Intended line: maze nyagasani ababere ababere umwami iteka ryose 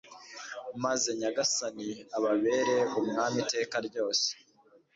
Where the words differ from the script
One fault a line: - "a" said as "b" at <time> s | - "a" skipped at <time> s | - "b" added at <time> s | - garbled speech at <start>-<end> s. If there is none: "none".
- "ababere" skipped at 2.8 s